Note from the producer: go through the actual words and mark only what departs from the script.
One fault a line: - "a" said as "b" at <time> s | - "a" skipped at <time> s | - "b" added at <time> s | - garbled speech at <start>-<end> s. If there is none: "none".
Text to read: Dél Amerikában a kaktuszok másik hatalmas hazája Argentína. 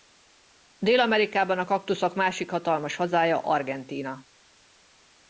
none